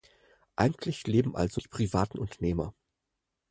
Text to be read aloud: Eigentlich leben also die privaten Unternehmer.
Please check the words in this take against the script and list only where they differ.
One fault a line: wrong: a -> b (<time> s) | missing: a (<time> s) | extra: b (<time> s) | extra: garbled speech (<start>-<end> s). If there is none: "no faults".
no faults